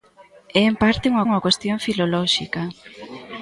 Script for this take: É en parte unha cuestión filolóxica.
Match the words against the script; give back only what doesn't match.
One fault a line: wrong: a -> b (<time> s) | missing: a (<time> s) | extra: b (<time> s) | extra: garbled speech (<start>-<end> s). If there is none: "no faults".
extra: unha (1.3 s)